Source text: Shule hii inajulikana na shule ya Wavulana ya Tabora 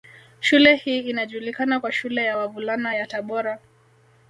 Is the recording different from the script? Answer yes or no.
yes